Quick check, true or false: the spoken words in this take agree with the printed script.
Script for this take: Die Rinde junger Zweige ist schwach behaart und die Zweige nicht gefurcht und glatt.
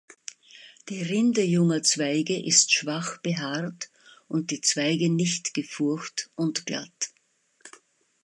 true